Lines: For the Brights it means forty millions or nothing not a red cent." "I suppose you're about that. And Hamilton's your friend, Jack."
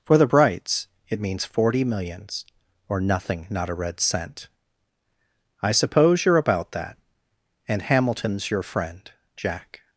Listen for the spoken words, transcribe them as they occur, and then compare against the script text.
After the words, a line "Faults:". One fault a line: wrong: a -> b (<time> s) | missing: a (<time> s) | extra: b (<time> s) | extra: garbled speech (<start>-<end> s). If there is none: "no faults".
For the Brights it means forty millions or nothing not a red cent." "I suppose you're about that. And Hamilton's your friend, Jack."
Faults:
no faults